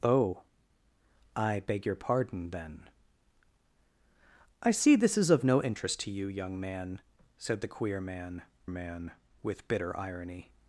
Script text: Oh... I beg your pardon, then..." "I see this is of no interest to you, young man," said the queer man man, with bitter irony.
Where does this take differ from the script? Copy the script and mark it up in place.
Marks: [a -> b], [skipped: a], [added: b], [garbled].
Oh... I beg your pardon, then..." "I see this is of no interest to you, young man," said the queer man man, with bitter irony.